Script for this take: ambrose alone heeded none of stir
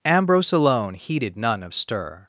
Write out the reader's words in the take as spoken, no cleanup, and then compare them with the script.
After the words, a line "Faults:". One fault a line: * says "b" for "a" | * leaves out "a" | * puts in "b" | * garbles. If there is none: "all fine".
ambrose alone heeded none of stir
Faults:
all fine